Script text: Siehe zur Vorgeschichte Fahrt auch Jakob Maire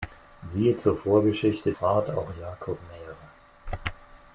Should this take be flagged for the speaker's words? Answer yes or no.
no